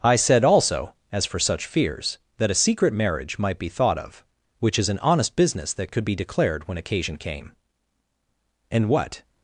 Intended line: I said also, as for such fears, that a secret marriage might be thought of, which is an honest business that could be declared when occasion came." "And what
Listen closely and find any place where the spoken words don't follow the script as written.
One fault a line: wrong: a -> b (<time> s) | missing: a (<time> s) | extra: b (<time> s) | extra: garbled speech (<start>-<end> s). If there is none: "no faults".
no faults